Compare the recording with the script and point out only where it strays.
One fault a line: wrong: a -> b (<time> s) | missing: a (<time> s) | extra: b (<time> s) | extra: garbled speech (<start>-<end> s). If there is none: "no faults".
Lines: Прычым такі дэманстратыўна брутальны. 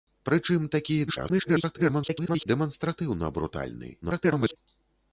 extra: garbled speech (1.1-2.5 s)
extra: garbled speech (4.0-4.6 s)